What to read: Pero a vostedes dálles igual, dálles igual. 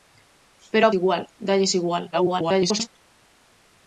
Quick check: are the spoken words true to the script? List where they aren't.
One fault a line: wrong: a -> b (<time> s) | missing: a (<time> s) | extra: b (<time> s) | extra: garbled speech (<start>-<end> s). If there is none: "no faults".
missing: vostedes dálles (0.9 s)
extra: garbled speech (2.1-2.9 s)